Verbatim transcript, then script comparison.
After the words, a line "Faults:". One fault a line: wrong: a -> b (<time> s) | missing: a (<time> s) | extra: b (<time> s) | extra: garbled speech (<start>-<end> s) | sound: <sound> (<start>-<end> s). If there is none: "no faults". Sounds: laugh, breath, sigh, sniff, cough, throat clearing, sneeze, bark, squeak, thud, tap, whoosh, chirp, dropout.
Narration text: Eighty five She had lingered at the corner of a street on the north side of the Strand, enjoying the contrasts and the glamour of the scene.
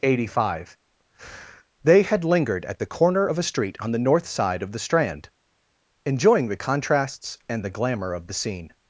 Eighty five They had lingered at the corner of a street on the north side of the Strand, enjoying the contrasts and the glamour of the scene.
Faults:
wrong: She -> They (1.8 s)